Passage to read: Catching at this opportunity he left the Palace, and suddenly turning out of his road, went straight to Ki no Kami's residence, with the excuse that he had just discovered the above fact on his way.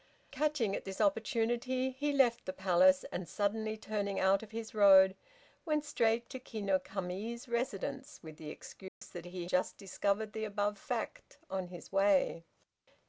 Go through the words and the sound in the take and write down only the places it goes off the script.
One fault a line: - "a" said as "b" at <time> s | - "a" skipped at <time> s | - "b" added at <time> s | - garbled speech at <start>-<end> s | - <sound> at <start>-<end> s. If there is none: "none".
- dropout at 8.9-9.0 s
- "had" skipped at 9.5 s